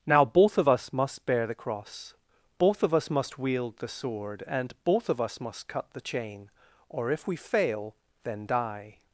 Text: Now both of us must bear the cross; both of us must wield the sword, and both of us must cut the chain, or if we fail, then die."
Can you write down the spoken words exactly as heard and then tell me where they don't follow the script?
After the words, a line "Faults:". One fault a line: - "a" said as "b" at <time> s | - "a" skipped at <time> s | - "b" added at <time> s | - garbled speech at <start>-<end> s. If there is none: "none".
Now both of us must bear the cross; both of us must wield the sword, and both of us must cut the chain, or if we fail, then die."
Faults:
none